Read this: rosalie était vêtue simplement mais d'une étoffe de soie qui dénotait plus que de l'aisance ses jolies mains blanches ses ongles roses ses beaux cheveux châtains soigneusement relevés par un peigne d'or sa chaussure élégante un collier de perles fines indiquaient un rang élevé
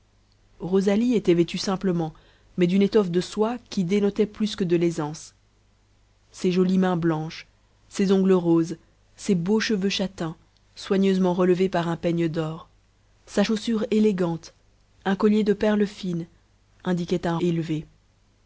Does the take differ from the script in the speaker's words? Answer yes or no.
yes